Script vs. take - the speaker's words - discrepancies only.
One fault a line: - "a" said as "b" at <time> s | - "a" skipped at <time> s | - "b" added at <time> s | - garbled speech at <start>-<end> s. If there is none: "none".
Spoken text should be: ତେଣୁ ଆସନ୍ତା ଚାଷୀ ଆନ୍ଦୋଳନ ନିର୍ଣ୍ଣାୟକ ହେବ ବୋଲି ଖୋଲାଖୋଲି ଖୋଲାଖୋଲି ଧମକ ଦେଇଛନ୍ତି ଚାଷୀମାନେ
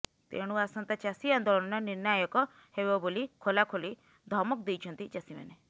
- "ଖୋଲାଖୋଲି" skipped at 3.9 s